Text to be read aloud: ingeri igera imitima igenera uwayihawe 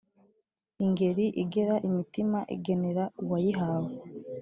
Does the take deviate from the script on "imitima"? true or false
false